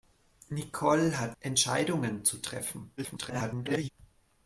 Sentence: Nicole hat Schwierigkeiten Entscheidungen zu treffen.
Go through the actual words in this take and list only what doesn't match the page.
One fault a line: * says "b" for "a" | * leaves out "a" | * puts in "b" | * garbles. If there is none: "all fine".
* leaves out "Schwierigkeiten"
* garbles